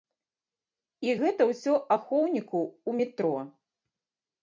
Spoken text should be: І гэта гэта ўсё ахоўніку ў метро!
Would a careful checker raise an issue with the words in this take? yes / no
yes